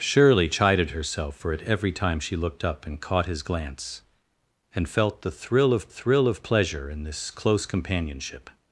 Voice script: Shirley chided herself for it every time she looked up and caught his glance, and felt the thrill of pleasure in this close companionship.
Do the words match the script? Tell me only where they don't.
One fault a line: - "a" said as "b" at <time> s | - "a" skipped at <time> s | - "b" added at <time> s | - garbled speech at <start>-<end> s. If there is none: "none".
- "thrill of" added at 5.9 s